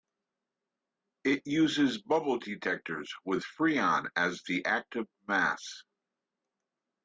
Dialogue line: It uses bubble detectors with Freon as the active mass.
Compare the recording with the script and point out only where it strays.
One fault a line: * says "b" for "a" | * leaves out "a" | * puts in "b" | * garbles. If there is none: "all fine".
all fine